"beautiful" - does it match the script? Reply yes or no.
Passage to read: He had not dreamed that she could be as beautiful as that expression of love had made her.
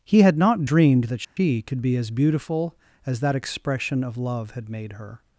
yes